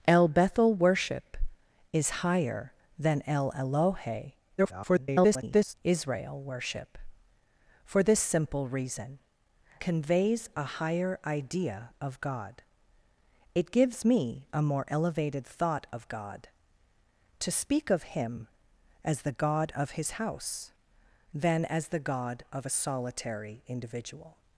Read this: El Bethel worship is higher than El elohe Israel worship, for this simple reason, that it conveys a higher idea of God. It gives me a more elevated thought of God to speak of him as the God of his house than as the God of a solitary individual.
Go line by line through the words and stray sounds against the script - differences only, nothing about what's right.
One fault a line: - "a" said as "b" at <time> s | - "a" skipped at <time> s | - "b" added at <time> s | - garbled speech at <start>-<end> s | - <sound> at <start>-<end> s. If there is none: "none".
- garbled speech at 4.6-5.7 s
- "that it" skipped at 9.2 s